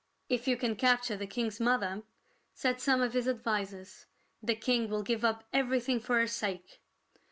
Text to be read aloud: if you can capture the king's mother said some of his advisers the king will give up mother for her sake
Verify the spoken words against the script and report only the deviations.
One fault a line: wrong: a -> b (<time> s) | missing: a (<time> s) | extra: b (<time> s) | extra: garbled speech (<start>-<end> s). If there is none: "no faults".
wrong: mother -> everything (5.5 s)